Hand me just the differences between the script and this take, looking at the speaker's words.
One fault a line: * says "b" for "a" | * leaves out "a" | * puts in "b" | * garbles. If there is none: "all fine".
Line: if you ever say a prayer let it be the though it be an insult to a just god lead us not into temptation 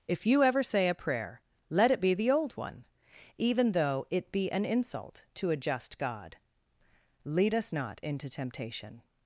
* puts in "old one even"